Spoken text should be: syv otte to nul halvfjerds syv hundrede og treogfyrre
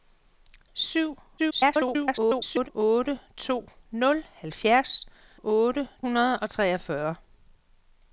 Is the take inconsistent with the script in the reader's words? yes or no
yes